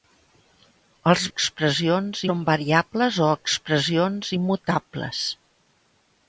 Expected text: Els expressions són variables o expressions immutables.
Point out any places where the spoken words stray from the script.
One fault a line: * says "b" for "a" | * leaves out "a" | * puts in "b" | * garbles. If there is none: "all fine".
all fine